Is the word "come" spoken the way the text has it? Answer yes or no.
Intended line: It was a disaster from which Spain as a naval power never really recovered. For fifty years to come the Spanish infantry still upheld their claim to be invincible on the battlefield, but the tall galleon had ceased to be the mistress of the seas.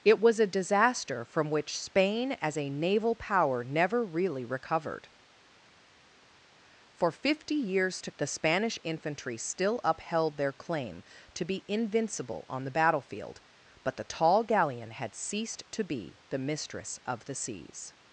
no